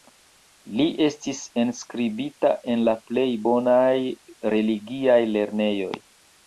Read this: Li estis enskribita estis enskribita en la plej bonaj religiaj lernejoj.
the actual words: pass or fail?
fail